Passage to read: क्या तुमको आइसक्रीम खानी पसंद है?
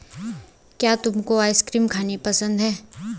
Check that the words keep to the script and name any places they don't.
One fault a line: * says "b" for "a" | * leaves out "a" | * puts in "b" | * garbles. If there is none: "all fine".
all fine